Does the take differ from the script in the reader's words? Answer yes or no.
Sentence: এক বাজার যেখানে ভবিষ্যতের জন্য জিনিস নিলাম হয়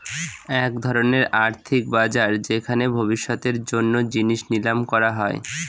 yes